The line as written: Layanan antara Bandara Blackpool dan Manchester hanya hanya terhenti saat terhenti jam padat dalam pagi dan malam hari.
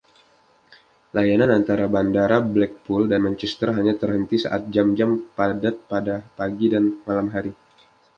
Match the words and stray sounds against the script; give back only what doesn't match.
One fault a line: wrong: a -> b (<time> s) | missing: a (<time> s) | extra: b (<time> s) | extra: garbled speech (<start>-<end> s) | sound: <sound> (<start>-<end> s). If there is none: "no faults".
missing: hanya (4.0 s)
wrong: terhenti -> jam (4.7 s)
wrong: dalam -> pada (5.9 s)